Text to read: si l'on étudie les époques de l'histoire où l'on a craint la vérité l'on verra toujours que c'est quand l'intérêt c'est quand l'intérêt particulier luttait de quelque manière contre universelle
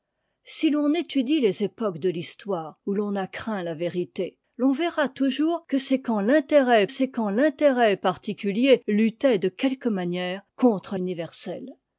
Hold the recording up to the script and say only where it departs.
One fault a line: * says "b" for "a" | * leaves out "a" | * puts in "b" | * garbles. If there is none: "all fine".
all fine